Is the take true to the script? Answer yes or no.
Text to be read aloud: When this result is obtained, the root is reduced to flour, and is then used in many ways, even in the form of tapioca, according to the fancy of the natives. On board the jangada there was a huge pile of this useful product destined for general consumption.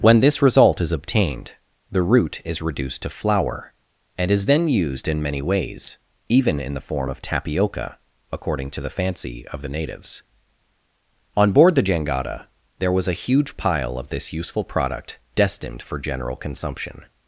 yes